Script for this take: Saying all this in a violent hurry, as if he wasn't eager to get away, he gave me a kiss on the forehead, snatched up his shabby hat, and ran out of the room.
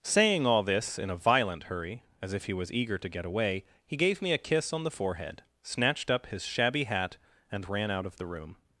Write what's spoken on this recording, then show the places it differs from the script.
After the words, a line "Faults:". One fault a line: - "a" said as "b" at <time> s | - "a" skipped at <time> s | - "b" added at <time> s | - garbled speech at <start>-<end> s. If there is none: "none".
Saying all this in a violent hurry, as if he was eager to get away, he gave me a kiss on the forehead, snatched up his shabby hat, and ran out of the room.
Faults:
- "wasn't" said as "was" at 2.5 s